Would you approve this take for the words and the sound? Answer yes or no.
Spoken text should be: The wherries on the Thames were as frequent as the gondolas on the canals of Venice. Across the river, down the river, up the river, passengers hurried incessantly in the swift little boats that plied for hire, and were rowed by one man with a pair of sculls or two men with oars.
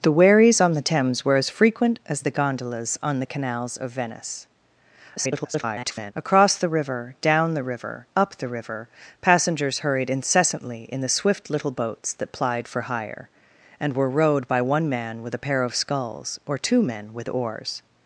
no